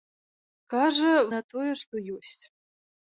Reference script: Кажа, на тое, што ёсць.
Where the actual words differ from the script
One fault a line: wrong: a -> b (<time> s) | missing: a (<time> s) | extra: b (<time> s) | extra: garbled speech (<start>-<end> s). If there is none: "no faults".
no faults